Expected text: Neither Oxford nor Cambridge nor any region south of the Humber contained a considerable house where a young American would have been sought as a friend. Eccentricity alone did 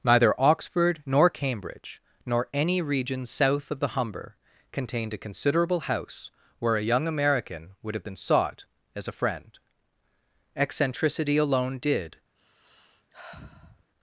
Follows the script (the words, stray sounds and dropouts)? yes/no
no